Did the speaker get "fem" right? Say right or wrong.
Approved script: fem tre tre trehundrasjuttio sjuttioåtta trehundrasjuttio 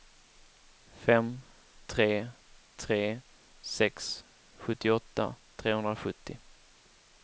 right